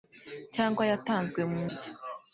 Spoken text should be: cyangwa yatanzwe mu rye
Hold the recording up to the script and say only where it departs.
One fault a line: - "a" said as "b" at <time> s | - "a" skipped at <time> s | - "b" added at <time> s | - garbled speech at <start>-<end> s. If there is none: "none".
none